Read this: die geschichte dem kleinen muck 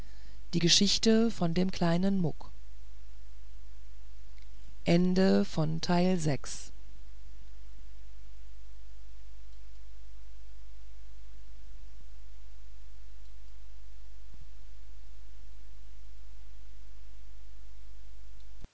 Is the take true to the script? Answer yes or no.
no